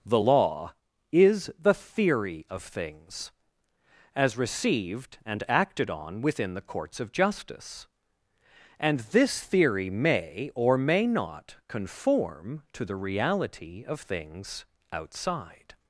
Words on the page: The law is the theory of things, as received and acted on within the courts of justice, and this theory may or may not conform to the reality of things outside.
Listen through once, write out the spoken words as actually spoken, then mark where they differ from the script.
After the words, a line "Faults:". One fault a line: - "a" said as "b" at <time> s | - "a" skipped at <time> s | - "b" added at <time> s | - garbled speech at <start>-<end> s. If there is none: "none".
The law is the theory of things, as received and acted on within the courts of justice, and this theory may or may not conform to the reality of things outside.
Faults:
none